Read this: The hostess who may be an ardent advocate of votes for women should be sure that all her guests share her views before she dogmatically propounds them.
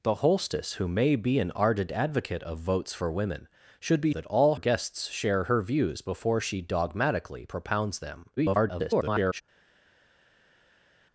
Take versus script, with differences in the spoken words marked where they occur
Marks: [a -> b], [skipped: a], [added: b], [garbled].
The hostess who may be an ardent advocate of votes for women should be [skipped: sure] that all [skipped: her] guests share her views before she dogmatically propounds them. [garbled]